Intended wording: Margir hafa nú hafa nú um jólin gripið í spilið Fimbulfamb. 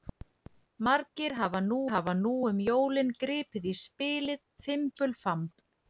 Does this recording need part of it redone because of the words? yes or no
no